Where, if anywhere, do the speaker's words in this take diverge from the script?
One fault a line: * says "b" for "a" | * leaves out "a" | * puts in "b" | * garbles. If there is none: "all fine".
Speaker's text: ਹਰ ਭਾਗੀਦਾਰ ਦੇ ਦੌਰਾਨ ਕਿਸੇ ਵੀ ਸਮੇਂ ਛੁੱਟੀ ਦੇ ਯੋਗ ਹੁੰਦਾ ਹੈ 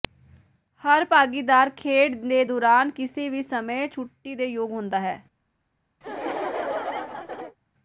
* puts in "ਖੇਡ"